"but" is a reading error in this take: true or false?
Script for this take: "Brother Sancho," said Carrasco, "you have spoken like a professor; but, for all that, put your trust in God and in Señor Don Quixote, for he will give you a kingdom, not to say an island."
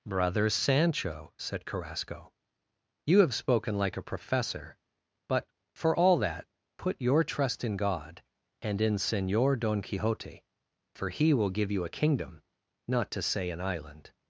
false